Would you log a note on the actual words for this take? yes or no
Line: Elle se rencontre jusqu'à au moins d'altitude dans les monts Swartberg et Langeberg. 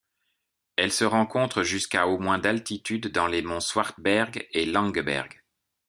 no